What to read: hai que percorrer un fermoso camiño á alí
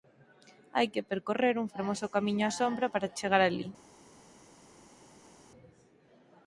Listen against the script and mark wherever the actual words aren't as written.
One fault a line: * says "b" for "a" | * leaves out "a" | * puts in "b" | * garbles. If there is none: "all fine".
* puts in "sombra para chegar"